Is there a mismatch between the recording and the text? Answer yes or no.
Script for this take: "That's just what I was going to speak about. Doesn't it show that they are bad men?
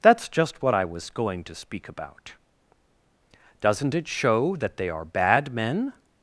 no